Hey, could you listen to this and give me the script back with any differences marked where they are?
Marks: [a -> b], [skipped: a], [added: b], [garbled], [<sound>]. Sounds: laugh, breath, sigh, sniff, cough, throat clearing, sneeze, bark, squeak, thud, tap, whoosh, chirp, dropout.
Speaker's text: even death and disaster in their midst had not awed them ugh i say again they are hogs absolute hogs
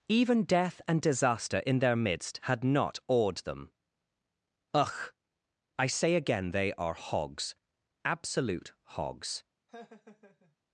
even death and disaster in their midst had not awed them ugh i say again they are hogs absolute hogs [laugh]